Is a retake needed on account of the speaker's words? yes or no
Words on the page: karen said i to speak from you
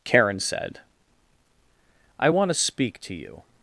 yes